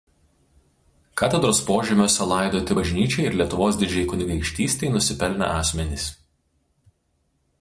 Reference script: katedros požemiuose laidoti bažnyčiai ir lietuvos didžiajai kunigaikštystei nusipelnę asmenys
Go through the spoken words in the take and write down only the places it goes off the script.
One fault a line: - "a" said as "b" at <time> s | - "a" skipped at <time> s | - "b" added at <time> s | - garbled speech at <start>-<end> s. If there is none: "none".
none